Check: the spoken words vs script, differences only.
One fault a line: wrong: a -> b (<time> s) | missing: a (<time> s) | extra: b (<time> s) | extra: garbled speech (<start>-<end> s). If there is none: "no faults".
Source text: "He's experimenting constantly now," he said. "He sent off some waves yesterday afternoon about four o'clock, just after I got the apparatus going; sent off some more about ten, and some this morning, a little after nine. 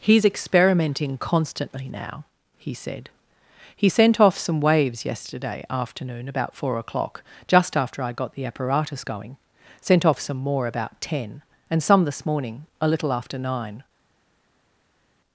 no faults